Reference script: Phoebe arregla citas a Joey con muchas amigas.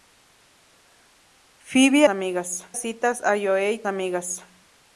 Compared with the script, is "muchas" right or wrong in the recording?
wrong